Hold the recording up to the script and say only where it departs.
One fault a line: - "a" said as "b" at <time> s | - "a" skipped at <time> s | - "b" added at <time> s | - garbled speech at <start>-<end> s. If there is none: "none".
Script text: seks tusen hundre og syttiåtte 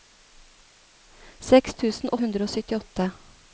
none